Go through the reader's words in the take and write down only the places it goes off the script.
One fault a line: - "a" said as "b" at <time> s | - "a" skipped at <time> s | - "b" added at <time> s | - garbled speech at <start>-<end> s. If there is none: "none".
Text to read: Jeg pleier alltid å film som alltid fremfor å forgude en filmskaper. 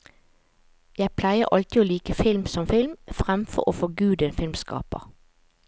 - "like" added at 1.9 s
- "alltid" said as "film" at 2.6 s